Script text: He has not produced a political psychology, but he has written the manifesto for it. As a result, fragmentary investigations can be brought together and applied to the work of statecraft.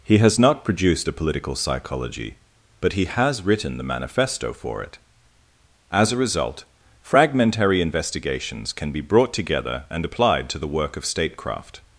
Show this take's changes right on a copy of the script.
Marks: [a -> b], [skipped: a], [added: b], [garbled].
He has not produced a political psychology, but he has written the manifesto for it. As a result, fragmentary investigations can be brought together and applied to the work of statecraft.